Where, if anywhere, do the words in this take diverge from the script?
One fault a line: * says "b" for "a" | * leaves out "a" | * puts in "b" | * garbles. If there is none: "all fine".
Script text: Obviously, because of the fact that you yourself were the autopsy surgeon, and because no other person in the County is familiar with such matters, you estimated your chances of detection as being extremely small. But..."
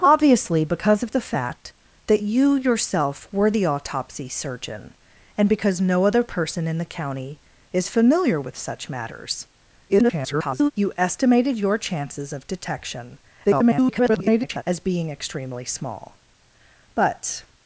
* garbles
* garbles